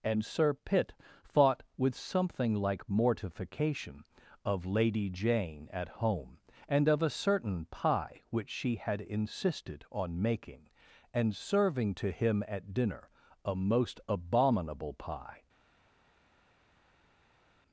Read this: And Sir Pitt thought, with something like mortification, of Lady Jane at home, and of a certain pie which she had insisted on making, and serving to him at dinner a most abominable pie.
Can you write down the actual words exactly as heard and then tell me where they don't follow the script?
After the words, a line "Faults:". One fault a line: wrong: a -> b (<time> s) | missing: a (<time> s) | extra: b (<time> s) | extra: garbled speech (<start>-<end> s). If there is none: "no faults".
And Sir Pitt thought, with something like mortification, of Lady Jane at home, and of a certain pie which she had insisted on making, and serving to him at dinner a most abominable pie.
Faults:
no faults